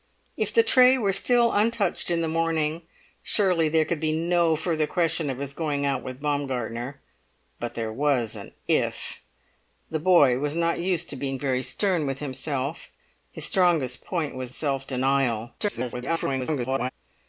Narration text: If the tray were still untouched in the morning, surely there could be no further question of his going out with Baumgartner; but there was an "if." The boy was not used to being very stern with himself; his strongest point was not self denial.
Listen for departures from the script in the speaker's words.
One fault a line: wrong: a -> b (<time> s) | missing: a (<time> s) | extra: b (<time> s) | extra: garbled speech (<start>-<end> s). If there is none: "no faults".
missing: not (14.5 s)
extra: garbled speech (15.6-16.9 s)